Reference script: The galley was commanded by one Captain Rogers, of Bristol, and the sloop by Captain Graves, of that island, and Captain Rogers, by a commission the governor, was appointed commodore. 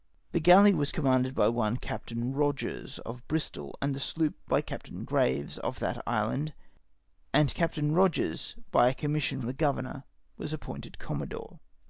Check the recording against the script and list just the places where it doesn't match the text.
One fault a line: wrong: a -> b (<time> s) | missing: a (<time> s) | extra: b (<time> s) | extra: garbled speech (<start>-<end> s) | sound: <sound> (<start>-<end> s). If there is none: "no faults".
no faults